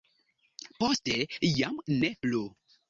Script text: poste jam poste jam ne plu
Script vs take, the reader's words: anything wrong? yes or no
yes